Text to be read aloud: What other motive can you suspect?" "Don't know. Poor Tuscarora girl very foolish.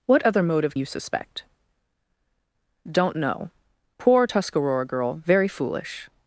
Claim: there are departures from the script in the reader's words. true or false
true